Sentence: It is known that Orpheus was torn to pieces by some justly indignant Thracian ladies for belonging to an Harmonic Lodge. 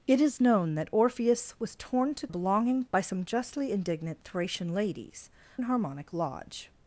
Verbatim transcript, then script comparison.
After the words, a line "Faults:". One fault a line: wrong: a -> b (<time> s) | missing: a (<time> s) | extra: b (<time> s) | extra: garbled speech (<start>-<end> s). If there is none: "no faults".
It is known that Orpheus was torn to belonging by some justly indignant Thracian ladies an Harmonic Lodge.
Faults:
wrong: pieces -> belonging (2.3 s)
missing: for belonging to (5.3 s)